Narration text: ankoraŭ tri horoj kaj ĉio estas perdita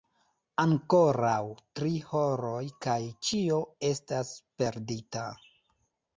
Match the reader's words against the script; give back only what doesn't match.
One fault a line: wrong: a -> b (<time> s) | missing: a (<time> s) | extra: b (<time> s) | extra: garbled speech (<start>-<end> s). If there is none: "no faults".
no faults